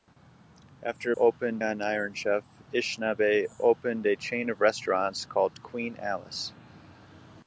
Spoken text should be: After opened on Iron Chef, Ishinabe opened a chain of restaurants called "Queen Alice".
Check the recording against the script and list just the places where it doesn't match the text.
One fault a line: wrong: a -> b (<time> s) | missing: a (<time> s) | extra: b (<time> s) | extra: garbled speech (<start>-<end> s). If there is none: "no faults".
no faults